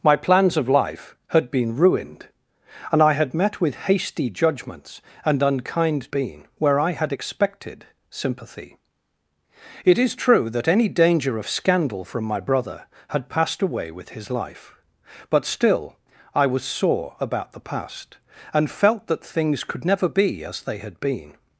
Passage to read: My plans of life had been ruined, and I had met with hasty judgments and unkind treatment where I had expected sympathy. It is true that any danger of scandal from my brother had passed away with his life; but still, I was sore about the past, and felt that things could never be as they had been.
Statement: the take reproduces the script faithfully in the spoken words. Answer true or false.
false